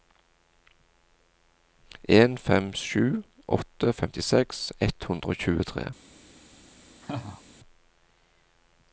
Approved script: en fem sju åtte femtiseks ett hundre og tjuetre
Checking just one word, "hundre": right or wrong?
right